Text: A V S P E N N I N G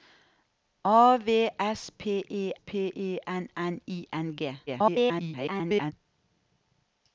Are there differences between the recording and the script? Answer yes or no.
yes